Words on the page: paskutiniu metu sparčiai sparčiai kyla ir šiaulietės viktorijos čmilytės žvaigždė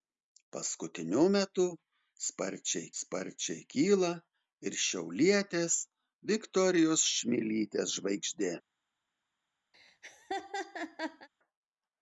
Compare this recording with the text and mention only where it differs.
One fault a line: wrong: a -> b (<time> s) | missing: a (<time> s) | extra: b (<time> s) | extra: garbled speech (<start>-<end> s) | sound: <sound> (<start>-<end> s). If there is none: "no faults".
sound: laugh (9.7-11.3 s)